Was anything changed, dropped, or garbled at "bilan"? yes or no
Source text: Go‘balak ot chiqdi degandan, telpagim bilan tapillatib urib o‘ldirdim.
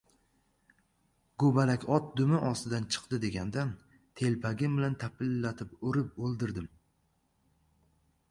no